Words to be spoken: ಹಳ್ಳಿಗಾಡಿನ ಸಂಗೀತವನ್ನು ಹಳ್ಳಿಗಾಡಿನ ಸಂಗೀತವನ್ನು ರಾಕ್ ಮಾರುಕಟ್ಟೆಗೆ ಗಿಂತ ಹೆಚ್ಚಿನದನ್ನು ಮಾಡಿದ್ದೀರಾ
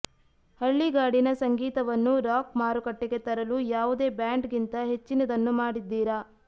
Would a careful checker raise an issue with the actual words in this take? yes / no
yes